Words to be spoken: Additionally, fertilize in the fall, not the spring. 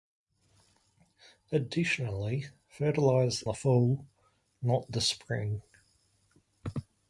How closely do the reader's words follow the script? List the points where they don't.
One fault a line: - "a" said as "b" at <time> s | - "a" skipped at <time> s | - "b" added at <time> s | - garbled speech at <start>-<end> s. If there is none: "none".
- "in" skipped at 3.4 s